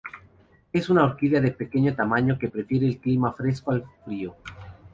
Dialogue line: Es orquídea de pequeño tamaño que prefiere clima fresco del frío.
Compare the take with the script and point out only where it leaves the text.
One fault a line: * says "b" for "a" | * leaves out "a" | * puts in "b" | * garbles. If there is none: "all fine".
* puts in "una"
* puts in "el"
* says "al" for "del"